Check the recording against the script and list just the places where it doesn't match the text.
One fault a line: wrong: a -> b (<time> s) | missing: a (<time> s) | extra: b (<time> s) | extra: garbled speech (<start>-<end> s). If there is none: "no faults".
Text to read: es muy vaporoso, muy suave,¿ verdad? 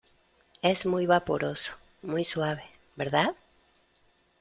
no faults